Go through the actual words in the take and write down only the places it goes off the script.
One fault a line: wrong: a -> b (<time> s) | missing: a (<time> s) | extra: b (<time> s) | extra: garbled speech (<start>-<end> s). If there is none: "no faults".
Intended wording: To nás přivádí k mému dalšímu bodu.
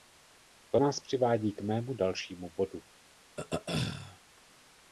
no faults